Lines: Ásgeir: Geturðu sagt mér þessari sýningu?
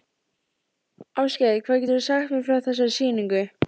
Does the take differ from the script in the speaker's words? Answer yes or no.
yes